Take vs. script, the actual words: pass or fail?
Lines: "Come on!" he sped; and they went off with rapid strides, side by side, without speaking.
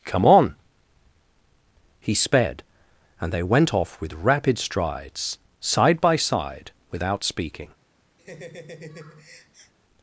pass